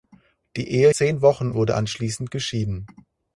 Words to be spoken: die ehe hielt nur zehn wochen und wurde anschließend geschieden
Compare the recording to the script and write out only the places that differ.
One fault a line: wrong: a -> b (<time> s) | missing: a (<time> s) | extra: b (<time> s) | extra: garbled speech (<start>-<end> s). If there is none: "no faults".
missing: hielt nur (0.9 s)
missing: und (1.5 s)